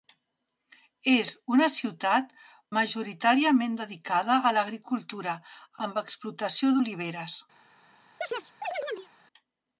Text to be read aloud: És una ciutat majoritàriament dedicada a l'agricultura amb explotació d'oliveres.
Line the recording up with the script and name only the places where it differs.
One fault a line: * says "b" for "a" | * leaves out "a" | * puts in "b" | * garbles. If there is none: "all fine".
all fine